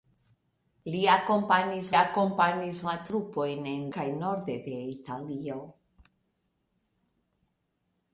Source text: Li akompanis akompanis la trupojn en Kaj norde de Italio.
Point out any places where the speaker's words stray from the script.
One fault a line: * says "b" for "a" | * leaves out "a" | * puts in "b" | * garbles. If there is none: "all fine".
all fine